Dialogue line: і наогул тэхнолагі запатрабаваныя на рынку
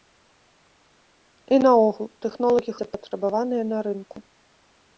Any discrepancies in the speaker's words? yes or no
no